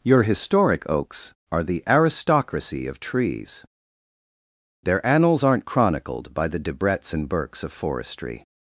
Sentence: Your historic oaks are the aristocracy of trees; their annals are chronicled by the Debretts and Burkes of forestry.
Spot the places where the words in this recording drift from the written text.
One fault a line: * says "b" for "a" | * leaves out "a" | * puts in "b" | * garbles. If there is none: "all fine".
* says "aren't" for "are"